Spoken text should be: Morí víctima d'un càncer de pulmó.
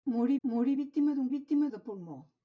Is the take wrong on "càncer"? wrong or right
wrong